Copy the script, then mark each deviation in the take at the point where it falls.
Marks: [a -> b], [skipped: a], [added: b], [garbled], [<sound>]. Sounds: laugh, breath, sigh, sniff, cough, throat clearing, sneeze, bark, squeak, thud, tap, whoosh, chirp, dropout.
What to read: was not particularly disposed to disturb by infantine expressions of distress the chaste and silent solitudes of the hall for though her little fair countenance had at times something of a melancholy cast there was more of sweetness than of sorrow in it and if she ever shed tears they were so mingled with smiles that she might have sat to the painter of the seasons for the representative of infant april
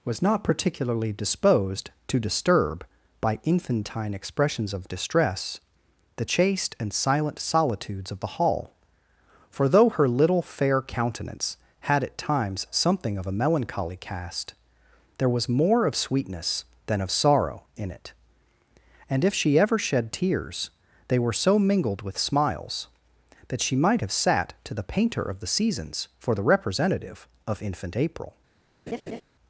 was not particularly disposed to disturb by infantine expressions of distress the chaste and silent solitudes of the hall for though her little fair countenance had at times something of a melancholy cast there was more of sweetness than of sorrow in it and if she ever shed tears they were so mingled with smiles that she might have sat to the painter of the seasons for the representative of infant april [laugh]